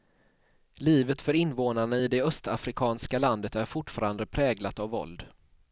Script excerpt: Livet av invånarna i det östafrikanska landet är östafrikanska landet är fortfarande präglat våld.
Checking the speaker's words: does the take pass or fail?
fail